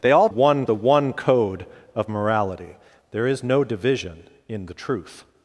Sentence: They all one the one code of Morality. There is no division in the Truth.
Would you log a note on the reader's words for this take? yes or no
no